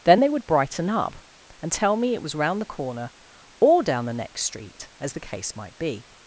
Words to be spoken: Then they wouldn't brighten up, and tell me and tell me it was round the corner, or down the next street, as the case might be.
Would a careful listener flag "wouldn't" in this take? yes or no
yes